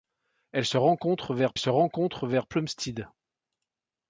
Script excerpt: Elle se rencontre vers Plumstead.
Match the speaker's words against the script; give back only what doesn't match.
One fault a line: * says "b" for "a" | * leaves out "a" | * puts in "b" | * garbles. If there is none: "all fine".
* puts in "se rencontre vers"